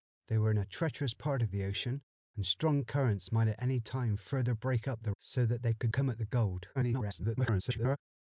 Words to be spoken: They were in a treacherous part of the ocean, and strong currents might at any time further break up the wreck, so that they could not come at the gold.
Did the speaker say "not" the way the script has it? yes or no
no